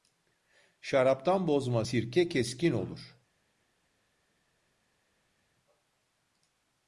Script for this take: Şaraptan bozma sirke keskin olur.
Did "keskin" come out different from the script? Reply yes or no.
no